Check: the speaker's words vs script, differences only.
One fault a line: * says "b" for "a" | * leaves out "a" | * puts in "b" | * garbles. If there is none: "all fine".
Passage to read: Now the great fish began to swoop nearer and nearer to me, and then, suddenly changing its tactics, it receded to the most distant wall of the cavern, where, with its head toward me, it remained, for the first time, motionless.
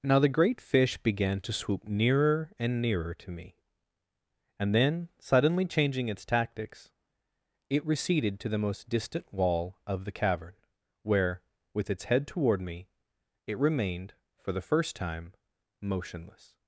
all fine